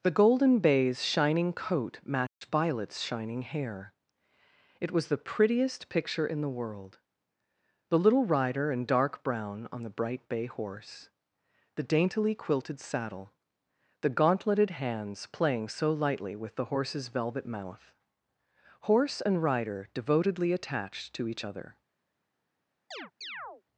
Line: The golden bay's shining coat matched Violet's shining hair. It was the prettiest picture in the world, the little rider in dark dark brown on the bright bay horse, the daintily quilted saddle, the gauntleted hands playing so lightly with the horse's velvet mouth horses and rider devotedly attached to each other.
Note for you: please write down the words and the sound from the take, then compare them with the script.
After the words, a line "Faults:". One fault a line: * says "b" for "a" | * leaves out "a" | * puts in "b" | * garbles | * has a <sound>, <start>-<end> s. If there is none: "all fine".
The golden bay's shining coat matched Violet's shining hair. It was the prettiest picture in the world, the little rider in dark brown on the bright bay horse, the daintily quilted saddle, the gauntleted hands playing so lightly with the horse's velvet mouth horse and rider devotedly attached to each other.
Faults:
* has a dropout, 2.3-2.4 s
* leaves out "dark"
* says "horse" for "horses"
* has a chirp, 22.9-23.6 s